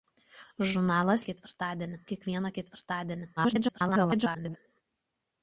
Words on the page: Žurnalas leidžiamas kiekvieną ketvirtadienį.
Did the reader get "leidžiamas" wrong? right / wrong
wrong